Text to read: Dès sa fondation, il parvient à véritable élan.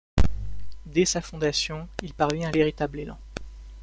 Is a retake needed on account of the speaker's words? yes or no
no